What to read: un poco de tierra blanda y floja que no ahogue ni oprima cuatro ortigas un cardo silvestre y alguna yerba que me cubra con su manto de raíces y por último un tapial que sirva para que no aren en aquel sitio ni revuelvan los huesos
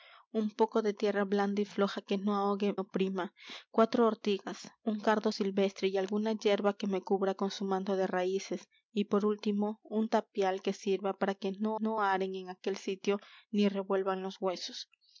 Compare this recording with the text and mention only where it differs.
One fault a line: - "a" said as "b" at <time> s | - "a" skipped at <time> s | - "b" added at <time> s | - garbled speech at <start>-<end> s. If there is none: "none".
- "ni" skipped at 2.8 s
- "no" added at 11.7 s